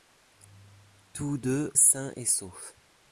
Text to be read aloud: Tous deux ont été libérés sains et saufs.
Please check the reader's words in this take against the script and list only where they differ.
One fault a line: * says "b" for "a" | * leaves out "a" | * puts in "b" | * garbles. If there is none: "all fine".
* leaves out "ont été libérés"